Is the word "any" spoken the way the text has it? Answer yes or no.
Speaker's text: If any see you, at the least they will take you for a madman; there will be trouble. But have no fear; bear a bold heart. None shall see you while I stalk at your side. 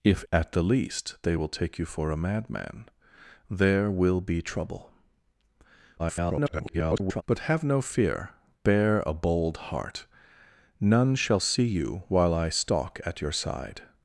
no